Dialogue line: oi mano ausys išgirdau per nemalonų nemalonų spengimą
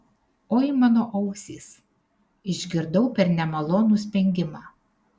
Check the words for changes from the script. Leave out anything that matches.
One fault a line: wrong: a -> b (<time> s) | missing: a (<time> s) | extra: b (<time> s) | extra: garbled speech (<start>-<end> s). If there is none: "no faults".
missing: nemalonų (4.0 s)